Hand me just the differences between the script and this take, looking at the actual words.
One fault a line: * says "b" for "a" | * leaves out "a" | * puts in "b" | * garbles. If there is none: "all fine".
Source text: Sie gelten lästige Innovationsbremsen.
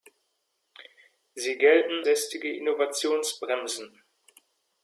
all fine